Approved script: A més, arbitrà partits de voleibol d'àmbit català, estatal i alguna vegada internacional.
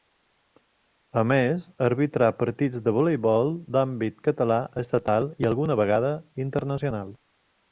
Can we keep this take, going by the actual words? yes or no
yes